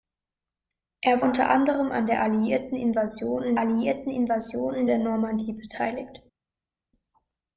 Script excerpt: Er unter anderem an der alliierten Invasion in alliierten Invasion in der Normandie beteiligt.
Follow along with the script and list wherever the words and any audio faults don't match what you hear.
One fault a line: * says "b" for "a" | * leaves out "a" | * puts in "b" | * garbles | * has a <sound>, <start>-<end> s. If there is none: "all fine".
all fine